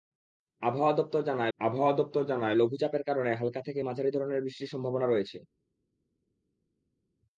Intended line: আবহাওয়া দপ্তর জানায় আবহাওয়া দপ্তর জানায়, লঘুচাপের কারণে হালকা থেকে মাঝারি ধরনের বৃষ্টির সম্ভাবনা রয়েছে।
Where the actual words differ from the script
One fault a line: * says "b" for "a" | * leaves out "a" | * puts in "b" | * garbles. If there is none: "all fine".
all fine